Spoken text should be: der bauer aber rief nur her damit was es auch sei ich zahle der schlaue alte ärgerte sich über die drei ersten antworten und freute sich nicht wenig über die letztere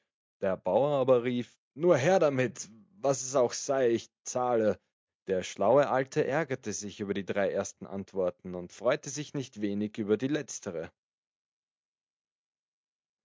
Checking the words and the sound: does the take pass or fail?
pass